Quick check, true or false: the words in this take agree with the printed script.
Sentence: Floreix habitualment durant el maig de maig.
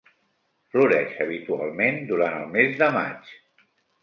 false